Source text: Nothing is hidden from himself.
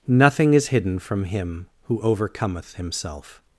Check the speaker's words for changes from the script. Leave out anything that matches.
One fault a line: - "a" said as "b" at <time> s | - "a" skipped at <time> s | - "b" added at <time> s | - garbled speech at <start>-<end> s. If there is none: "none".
- "him who overcometh" added at 1.2 s